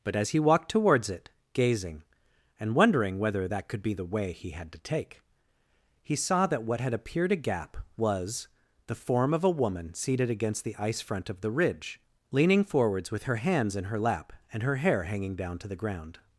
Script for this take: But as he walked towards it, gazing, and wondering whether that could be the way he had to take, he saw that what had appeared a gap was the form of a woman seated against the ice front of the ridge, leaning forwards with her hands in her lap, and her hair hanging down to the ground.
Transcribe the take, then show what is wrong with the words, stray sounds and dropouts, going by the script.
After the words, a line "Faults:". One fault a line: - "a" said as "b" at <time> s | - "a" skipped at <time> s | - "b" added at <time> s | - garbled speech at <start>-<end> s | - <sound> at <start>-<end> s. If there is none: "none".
But as he walked towards it, gazing, and wondering whether that could be the way he had to take, he saw that what had appeared a gap was the form of a woman seated against the ice front of the ridge, leaning forwards with her hands in her lap, and her hair hanging down to the ground.
Faults:
none